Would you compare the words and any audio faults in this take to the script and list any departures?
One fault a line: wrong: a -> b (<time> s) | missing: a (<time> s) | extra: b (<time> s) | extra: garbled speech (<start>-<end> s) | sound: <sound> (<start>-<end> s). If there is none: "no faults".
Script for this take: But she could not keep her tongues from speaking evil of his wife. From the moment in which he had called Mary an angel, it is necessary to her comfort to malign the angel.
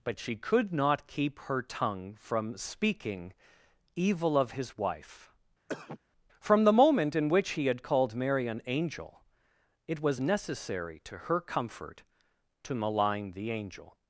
wrong: tongues -> tongue (1.6 s)
sound: cough (5.7-6.0 s)
wrong: is -> was (10.0 s)